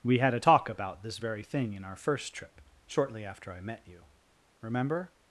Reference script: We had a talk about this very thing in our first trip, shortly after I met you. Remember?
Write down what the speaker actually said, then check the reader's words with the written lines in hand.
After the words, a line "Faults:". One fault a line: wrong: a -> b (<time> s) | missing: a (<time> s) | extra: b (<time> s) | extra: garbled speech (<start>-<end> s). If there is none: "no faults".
We had a talk about this very thing in our first trip, shortly after I met you. Remember?
Faults:
no faults